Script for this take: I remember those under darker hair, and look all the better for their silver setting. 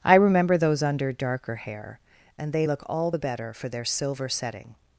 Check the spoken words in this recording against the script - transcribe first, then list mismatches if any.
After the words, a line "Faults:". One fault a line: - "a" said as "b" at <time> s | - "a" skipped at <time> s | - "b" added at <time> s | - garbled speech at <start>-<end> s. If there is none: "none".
I remember those under darker hair, and they look all the better for their silver setting.
Faults:
- "they" added at 2.5 s